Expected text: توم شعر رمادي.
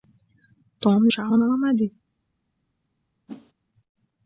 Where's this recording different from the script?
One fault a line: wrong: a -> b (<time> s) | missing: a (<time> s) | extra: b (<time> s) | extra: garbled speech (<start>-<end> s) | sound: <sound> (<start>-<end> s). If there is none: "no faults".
sound: whoosh (3.3-3.5 s)